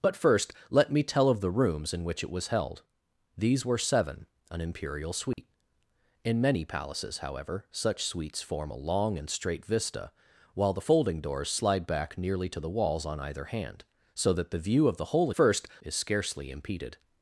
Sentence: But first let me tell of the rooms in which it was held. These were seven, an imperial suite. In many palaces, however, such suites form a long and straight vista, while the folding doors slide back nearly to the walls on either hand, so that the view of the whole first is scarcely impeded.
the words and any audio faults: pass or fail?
fail